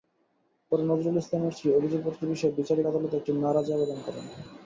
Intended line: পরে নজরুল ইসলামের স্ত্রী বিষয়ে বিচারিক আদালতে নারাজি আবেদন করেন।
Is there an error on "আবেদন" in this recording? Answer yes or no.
no